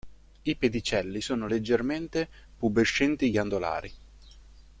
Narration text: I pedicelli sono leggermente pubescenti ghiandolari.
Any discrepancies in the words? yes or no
no